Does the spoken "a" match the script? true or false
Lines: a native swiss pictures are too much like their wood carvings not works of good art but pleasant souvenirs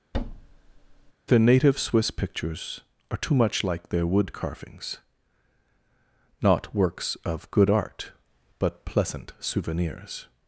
false